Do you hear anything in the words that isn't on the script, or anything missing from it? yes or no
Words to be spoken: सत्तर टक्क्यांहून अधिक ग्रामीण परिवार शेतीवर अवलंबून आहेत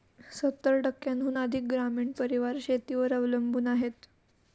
no